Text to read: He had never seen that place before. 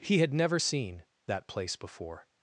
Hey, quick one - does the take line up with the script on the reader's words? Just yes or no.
yes